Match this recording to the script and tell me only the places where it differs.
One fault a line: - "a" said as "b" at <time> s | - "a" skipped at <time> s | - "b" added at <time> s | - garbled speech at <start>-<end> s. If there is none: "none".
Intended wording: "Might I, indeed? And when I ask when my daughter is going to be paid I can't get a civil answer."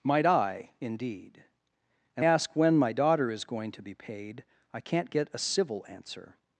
- "when I" skipped at 2.2 s